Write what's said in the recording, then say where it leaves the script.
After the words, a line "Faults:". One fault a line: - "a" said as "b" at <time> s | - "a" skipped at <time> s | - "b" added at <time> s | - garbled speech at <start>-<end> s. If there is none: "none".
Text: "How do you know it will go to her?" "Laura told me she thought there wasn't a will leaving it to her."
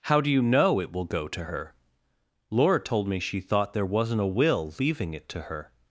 "How do you know it will go to her?" "Laura told me she thought there wasn't a will leaving it to her."
Faults:
none